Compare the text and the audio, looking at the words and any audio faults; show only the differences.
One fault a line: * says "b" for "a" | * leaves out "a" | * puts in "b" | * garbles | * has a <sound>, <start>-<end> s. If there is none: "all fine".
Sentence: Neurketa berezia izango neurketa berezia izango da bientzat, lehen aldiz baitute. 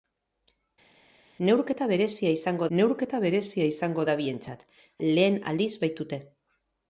all fine